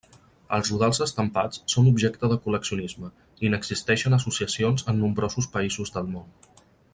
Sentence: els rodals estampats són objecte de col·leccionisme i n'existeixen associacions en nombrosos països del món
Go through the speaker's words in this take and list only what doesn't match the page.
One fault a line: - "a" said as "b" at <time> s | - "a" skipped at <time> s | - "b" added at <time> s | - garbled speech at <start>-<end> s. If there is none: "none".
none